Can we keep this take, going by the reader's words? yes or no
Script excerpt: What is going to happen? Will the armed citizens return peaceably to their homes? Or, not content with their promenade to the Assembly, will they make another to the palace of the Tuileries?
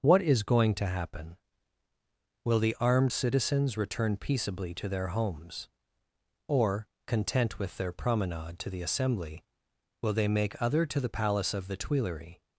no